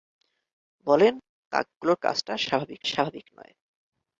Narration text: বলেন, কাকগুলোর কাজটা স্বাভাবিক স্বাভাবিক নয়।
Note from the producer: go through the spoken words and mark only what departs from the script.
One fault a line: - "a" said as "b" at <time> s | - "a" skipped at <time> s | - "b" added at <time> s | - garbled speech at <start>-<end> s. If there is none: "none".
none